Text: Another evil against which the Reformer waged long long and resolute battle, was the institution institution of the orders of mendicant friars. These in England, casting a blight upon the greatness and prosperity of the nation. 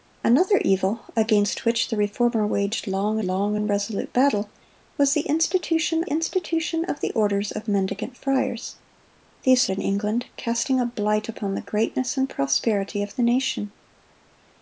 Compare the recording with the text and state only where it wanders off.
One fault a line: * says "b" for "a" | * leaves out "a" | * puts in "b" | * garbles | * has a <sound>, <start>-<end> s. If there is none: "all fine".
all fine